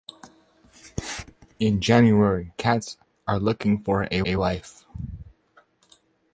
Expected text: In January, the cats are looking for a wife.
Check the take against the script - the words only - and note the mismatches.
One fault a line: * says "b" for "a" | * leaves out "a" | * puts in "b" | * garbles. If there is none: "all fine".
* leaves out "the"
* puts in "a"